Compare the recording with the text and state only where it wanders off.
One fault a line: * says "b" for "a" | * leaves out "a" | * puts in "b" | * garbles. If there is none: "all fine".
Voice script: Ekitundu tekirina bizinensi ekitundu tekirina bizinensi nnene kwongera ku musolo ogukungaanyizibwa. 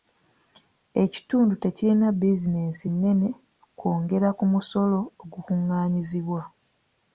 * leaves out "ekitundu tekirina bizinensi"